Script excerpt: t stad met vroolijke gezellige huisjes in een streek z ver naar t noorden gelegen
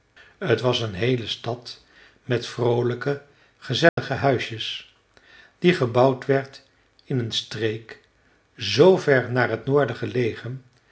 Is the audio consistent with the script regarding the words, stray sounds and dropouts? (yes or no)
no